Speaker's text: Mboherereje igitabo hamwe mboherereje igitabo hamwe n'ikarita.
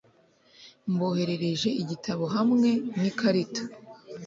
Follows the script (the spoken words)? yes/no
no